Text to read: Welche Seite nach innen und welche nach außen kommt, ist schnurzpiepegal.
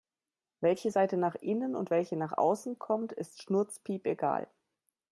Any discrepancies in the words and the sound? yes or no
no